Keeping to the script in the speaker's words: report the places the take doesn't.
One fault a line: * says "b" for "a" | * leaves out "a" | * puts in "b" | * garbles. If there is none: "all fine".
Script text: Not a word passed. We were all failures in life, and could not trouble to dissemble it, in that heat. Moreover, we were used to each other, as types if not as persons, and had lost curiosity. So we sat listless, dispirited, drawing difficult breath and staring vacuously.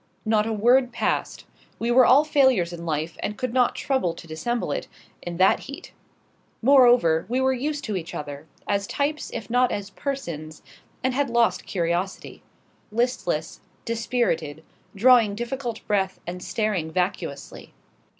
* leaves out "So we sat"